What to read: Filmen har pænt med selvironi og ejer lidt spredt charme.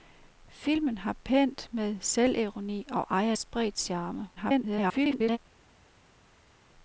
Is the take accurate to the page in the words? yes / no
no